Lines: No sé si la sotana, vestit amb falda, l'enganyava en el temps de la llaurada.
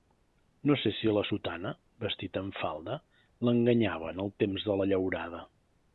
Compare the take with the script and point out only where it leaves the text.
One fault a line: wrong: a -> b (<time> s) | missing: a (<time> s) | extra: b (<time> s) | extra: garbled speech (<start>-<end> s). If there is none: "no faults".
no faults